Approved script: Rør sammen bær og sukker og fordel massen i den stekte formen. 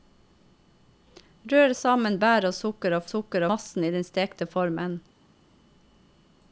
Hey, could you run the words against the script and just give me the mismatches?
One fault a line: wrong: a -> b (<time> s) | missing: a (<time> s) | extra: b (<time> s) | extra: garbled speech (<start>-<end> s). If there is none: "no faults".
wrong: fordel -> sukker (3.1 s)